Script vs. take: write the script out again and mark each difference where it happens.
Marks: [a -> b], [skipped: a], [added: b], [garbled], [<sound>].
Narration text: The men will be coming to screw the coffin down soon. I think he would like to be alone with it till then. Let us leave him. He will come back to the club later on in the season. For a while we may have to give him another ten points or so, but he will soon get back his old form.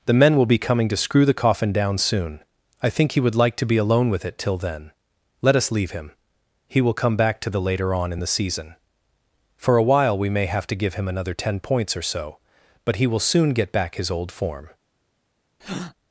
The men will be coming to screw the coffin down soon. I think he would like to be alone with it till then. Let us leave him. He will come back to the [skipped: club] later on in the season. For a while we may have to give him another ten points or so, but he will soon get back his old form. [breath]